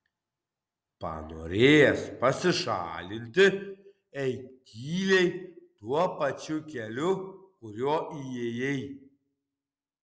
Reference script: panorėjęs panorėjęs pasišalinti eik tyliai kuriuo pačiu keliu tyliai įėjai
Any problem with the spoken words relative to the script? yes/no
yes